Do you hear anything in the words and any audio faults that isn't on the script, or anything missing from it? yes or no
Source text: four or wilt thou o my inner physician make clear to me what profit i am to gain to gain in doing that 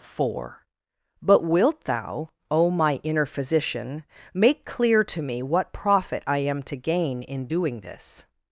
yes